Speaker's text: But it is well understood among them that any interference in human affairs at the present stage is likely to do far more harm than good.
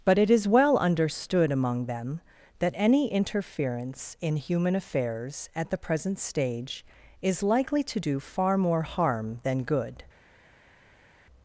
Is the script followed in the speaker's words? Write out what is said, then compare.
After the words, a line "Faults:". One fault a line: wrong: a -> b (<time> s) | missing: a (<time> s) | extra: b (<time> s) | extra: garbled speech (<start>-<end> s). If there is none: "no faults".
But it is well understood among them that any interference in human affairs at the present stage is likely to do far more harm than good.
Faults:
no faults